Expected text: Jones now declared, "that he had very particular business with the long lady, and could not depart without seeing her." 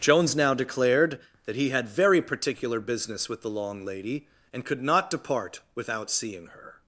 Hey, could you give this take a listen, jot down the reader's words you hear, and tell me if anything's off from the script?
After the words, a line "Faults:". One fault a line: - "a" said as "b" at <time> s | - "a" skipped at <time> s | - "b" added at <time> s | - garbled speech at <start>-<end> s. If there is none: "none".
Jones now declared, "that he had very particular business with the long lady, and could not depart without seeing her."
Faults:
none